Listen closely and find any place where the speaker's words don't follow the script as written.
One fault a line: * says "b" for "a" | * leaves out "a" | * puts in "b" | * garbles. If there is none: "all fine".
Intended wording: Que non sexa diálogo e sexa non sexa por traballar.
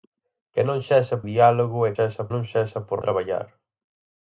all fine